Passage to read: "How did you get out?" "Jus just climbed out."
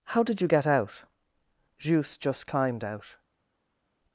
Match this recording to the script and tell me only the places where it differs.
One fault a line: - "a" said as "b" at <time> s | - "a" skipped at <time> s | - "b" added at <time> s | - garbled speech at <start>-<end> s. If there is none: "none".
none